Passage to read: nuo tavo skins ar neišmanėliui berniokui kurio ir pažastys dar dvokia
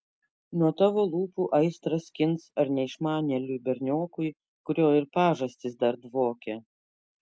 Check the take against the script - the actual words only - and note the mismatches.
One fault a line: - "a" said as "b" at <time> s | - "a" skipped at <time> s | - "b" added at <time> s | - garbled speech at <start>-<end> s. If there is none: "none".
- "lūpų aistrą" added at 1.1 s